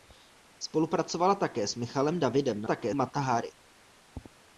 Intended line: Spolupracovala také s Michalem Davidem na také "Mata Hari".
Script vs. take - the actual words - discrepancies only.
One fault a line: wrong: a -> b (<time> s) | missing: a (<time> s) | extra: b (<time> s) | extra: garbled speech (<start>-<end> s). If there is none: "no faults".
no faults